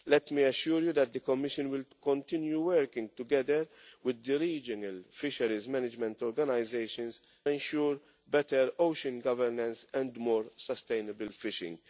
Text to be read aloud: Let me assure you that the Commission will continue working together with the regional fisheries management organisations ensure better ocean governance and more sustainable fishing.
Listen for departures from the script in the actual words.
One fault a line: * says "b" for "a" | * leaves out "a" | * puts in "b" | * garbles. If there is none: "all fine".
all fine